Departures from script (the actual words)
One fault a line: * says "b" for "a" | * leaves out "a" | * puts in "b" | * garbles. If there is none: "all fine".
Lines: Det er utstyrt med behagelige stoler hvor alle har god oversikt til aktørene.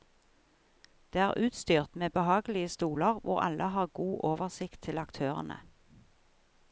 all fine